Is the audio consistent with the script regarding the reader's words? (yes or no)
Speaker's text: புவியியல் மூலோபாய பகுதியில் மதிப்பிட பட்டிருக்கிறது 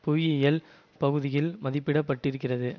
no